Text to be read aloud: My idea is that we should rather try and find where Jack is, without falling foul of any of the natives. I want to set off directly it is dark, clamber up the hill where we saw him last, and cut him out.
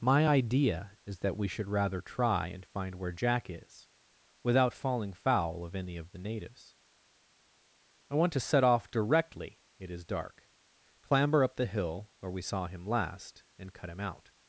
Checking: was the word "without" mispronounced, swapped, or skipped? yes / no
no